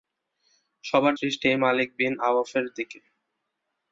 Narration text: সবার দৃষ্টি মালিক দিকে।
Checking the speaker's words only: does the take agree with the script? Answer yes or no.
no